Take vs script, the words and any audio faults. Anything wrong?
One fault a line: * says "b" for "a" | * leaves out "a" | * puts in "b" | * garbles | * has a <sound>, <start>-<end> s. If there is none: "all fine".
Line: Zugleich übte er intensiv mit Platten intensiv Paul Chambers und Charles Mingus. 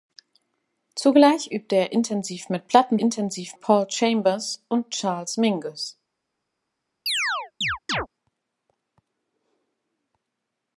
* has a chirp, 7.1-8.1 s